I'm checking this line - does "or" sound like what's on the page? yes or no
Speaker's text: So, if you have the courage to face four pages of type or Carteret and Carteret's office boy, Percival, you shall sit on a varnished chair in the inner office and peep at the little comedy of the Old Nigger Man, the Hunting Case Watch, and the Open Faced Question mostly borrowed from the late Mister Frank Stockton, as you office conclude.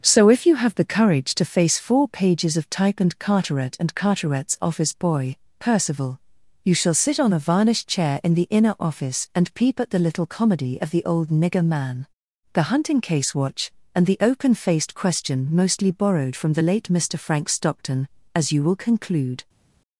no